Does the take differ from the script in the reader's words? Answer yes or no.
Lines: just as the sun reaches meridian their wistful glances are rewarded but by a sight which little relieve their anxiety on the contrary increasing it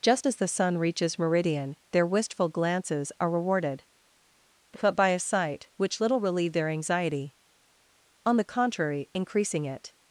no